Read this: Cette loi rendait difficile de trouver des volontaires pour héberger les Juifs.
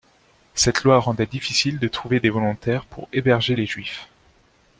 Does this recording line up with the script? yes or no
yes